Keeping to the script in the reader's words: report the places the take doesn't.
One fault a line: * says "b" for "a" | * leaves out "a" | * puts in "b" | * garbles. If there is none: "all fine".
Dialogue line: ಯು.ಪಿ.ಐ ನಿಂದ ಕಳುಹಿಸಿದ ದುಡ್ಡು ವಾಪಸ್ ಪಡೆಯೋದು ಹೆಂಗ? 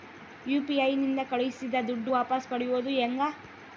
all fine